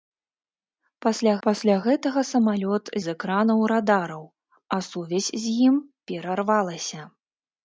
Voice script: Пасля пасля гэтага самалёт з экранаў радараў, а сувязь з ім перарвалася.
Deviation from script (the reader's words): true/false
false